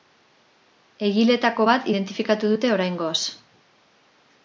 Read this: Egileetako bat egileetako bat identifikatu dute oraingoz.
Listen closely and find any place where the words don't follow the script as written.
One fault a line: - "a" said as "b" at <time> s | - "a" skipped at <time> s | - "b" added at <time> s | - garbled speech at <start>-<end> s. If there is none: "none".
- "egileetako bat" skipped at 1.9 s